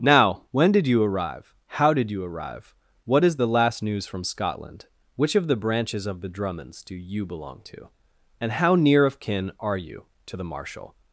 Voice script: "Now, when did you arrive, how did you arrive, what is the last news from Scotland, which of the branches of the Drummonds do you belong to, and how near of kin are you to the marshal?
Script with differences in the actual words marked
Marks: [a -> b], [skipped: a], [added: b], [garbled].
"Now, when did you arrive, how did you arrive, what is the last news from Scotland, which of the branches of the Drummonds do you belong to, and how near of kin are you to the marshal?